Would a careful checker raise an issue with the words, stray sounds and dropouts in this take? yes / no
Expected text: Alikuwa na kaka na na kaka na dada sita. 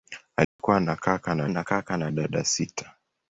yes